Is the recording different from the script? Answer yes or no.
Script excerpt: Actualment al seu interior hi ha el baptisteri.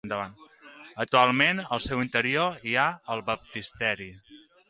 no